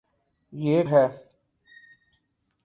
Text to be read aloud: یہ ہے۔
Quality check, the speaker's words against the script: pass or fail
pass